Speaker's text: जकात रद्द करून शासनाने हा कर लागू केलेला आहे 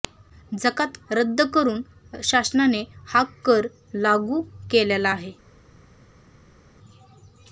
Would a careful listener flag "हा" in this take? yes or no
no